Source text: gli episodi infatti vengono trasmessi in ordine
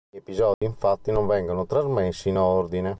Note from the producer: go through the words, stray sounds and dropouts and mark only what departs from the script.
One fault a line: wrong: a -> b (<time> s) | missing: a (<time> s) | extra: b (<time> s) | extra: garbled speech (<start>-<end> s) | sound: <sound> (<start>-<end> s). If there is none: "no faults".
sound: dropout (0.5-0.6 s)
extra: non (1.1 s)